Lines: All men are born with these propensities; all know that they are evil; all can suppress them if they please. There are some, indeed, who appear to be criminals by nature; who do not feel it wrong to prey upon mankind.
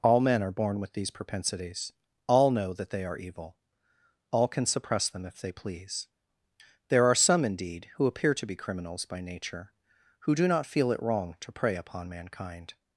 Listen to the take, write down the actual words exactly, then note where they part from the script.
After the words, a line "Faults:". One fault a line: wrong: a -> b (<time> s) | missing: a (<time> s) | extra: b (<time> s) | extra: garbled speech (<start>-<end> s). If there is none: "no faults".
All men are born with these propensities; all know that they are evil; all can suppress them if they please. There are some, indeed, who appear to be criminals by nature; who do not feel it wrong to prey upon mankind.
Faults:
no faults